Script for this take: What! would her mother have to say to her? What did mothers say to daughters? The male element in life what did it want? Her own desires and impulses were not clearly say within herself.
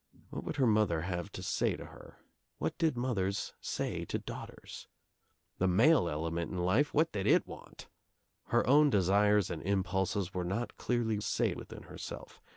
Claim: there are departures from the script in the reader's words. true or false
false